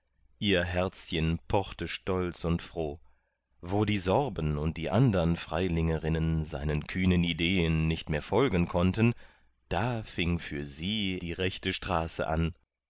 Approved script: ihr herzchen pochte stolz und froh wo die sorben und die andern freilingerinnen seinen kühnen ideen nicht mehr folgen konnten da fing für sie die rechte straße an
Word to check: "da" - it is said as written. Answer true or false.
true